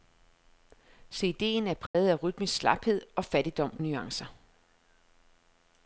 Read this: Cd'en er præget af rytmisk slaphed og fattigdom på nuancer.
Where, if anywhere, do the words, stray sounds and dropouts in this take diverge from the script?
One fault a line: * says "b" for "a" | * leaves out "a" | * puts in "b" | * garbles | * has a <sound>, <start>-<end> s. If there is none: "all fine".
* has a dropout, 1.9-1.9 s
* leaves out "på"